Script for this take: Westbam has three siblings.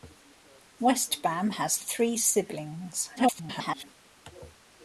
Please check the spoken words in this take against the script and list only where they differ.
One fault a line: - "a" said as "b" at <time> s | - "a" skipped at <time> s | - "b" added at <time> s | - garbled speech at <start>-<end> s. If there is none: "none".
- garbled speech at 3.2-3.8 s